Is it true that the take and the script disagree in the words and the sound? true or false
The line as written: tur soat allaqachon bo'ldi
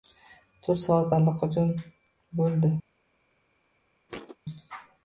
true